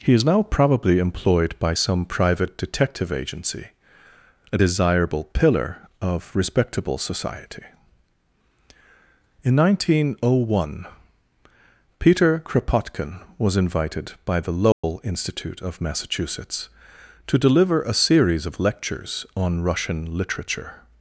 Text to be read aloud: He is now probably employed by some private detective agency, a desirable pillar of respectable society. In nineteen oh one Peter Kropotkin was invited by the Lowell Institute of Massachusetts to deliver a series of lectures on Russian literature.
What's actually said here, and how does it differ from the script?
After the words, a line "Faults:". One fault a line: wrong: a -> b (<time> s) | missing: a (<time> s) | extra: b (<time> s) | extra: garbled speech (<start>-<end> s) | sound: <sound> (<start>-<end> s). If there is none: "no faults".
He is now probably employed by some private detective agency, a desirable pillar of respectable society. In nineteen oh one Peter Kropotkin was invited by the Lowell Institute of Massachusetts to deliver a series of lectures on Russian literature.
Faults:
sound: dropout (14.7-14.8 s)